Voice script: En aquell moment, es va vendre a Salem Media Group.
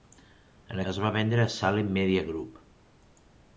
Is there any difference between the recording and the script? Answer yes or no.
yes